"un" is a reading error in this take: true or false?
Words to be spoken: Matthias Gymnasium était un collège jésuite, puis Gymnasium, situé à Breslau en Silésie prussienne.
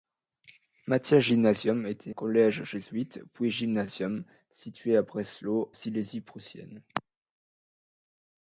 true